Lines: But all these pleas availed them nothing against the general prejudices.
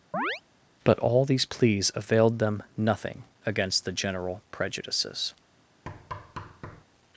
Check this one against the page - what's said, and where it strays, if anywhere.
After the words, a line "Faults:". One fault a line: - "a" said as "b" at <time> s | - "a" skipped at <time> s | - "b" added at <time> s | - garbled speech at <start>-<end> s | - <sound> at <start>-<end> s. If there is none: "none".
But all these pleas availed them nothing against the general prejudices.
Faults:
- chirp at 0.1-0.4 s
- thud at 5.9-6.8 s